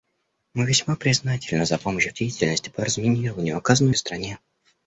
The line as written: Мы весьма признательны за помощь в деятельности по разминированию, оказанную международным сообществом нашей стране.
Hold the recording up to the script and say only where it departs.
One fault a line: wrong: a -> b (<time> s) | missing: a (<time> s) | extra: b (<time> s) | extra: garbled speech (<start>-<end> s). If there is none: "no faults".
missing: международным сообществом нашей (4.0 s)